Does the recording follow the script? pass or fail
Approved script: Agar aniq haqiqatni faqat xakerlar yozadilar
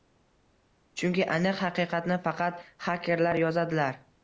fail